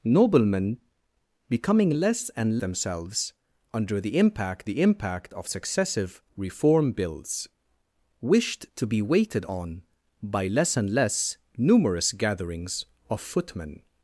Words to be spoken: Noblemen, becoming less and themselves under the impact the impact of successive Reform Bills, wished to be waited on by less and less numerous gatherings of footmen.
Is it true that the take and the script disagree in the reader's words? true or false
false